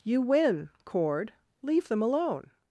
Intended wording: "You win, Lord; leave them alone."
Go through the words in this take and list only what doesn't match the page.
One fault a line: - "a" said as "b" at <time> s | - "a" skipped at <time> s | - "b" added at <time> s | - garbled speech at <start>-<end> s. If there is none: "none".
- "Lord" said as "Cord" at 0.8 s